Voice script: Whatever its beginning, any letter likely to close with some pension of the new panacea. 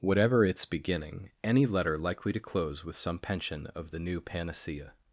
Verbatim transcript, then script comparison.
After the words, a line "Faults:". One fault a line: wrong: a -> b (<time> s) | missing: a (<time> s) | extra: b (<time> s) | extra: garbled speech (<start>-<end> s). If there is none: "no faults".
Whatever its beginning, any letter likely to close with some pension of the new panacea.
Faults:
no faults